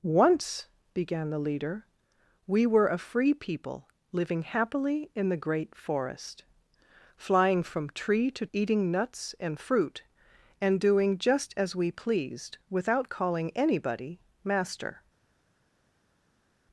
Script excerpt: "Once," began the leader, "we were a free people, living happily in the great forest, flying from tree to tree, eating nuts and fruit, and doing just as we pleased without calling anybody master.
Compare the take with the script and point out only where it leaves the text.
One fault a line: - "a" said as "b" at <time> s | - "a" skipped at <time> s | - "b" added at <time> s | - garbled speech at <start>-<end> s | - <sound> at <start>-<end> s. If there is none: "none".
- "tree" skipped at 8.5 s